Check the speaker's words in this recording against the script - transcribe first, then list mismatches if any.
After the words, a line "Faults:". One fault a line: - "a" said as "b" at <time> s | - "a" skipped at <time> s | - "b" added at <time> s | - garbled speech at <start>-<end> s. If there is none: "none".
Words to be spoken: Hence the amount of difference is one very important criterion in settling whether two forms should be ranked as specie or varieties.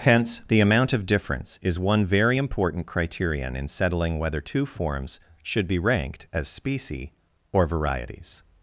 Hence the amount of difference is one very important criterion in settling whether two forms should be ranked as specie or varieties.
Faults:
none